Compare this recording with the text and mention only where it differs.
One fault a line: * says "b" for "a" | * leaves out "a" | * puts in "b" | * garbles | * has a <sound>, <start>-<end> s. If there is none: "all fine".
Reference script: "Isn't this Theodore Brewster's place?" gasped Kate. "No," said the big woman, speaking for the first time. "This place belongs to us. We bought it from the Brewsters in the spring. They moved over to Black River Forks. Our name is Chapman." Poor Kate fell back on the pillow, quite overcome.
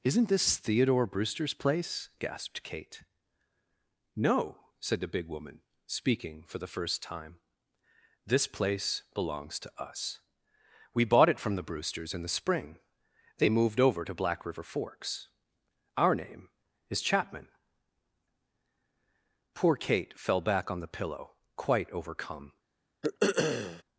* has a throat clearing, 23.0-23.8 s